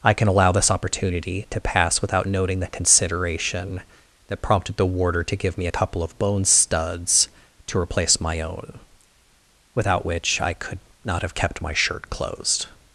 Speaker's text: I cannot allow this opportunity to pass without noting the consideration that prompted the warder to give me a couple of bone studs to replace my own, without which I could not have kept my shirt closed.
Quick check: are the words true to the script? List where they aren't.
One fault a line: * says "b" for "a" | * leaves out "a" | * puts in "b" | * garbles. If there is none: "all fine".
* says "can" for "cannot"